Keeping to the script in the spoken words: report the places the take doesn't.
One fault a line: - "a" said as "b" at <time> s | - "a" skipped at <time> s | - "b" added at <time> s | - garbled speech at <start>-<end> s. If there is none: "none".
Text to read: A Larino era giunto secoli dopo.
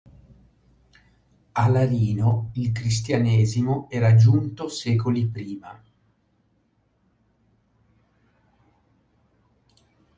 - "il Cristianesimo" added at 2.5 s
- "dopo" said as "prima" at 5.2 s